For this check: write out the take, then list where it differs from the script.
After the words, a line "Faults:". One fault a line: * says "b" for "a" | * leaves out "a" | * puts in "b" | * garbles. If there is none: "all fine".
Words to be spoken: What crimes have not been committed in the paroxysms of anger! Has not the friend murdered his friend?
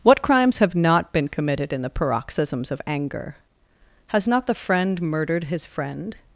What crimes have not been committed in the paroxysms of anger! Has not the friend murdered his friend?
Faults:
all fine